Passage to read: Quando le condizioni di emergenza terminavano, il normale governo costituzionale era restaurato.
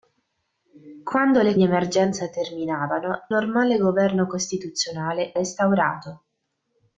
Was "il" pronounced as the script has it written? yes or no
no